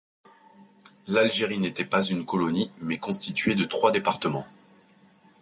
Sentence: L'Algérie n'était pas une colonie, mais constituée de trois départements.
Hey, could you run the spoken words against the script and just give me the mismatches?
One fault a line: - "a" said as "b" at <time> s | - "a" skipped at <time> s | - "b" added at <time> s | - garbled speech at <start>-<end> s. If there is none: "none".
none